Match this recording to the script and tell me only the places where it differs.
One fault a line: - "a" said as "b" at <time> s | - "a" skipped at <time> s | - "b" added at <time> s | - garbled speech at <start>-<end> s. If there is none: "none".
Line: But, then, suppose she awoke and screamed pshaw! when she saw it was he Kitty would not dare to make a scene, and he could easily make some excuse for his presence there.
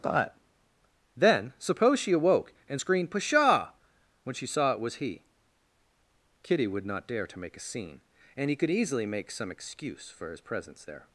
none